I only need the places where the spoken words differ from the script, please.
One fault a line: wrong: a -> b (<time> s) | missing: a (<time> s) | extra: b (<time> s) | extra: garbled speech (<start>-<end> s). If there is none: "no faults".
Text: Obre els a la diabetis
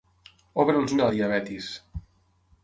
no faults